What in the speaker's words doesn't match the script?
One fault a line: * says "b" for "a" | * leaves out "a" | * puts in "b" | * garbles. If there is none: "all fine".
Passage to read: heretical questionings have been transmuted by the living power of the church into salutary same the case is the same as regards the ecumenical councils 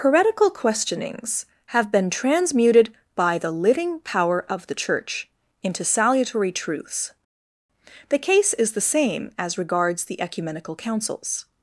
* says "truths" for "same"